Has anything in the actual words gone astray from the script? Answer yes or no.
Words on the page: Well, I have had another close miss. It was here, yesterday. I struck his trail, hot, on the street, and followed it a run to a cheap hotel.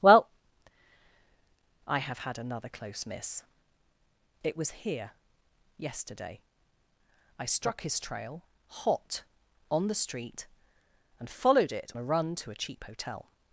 no